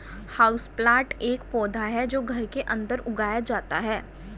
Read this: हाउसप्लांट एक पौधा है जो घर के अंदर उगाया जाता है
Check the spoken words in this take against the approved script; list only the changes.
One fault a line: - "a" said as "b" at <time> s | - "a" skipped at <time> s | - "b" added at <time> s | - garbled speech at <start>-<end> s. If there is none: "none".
none